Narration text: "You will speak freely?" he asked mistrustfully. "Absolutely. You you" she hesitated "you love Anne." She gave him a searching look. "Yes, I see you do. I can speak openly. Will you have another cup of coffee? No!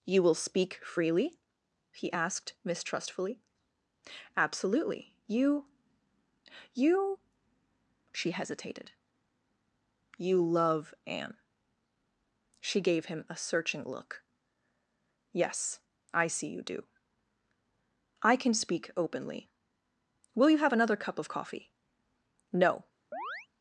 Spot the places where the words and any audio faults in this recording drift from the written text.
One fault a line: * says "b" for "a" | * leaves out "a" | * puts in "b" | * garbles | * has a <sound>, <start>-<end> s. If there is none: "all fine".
* has a chirp, 23.1-23.5 s